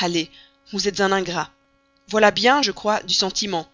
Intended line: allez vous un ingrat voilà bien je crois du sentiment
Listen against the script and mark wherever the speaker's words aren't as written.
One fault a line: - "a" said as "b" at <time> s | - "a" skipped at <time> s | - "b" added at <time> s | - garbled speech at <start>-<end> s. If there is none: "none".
- "êtes" added at 0.9 s